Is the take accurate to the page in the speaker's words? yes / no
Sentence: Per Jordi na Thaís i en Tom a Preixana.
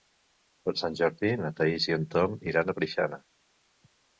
no